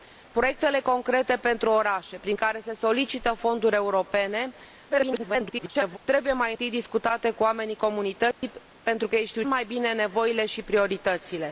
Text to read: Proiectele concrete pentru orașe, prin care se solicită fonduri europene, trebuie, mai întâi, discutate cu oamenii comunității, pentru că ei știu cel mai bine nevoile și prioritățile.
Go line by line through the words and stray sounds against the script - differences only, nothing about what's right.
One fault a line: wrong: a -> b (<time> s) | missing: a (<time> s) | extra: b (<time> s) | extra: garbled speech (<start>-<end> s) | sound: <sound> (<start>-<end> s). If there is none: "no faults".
extra: garbled speech (4.9-6.0 s)
sound: dropout (8.3-8.4 s)
missing: cel (9.4 s)